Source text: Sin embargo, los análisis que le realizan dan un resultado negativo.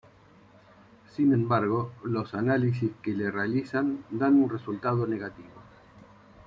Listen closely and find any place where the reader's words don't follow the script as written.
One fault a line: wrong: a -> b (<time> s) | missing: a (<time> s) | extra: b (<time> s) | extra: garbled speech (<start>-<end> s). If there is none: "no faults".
no faults